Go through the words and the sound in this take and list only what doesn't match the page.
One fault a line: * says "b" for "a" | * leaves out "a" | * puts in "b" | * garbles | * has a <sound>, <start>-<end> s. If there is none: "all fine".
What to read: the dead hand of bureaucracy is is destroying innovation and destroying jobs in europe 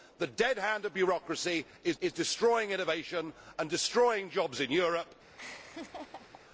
* has a laugh, 5.3-6.4 s